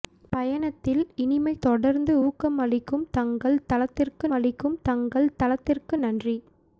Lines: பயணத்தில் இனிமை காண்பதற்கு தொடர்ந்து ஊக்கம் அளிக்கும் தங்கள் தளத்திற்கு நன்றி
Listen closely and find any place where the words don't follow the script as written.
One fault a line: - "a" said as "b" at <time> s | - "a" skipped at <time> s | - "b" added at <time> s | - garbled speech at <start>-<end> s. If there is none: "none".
- "காண்பதற்கு" skipped at 1.5 s
- "அளிக்கும் தங்கள் தளத்திற்கு" added at 4.3 s